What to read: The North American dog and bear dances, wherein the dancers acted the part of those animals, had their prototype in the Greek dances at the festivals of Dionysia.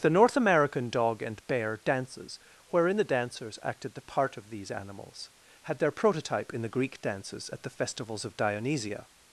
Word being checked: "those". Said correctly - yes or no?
no